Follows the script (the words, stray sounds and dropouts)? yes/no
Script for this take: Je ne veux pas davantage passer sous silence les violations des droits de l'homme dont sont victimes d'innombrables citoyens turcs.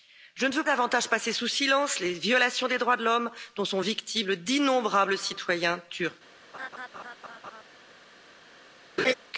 no